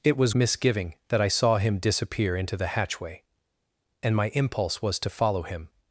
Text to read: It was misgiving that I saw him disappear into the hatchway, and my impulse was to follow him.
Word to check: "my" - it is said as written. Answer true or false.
true